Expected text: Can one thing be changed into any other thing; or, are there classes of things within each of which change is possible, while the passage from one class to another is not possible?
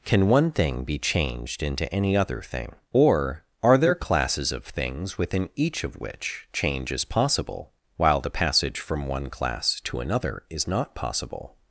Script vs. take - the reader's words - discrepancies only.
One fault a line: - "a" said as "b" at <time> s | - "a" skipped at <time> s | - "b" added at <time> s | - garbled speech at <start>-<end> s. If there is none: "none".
none